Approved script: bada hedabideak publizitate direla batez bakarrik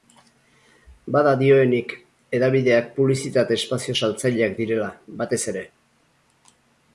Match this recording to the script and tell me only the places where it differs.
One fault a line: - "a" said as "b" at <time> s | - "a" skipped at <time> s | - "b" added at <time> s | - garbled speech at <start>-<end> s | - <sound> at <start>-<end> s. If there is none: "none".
- "dioenik" added at 1.4 s
- "espazio saltzaileak" added at 3.6 s
- "bakarrik" said as "ere" at 5.6 s